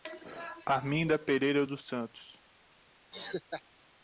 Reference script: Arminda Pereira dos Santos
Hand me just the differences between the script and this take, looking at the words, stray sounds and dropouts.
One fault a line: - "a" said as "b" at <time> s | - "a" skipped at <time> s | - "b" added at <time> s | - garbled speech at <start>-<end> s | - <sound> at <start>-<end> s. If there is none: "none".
- laugh at 3.1-3.6 s